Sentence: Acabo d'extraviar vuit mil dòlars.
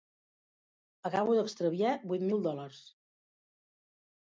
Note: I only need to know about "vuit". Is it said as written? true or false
true